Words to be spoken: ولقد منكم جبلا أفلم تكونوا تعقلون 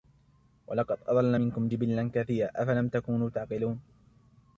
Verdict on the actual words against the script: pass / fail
fail